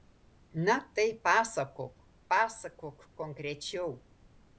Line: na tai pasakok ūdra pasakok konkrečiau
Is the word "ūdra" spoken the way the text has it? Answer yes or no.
no